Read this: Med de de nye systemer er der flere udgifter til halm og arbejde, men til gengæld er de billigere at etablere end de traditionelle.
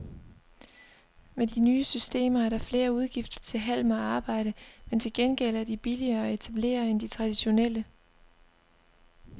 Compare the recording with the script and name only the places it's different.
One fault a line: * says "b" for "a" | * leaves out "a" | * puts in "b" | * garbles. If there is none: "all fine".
all fine